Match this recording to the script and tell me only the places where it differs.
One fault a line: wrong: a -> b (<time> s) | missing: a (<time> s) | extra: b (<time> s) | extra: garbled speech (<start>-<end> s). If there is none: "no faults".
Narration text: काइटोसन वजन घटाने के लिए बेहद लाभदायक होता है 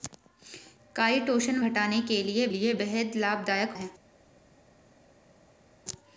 missing: वजन (1.6 s)
extra: लिए (2.5 s)
missing: होता (3.8 s)